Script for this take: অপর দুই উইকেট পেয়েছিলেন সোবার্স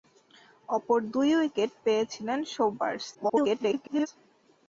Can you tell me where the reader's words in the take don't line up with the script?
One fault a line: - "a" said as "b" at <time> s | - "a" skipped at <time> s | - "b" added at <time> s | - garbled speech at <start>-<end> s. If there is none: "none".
- garbled speech at 3.1-4.1 s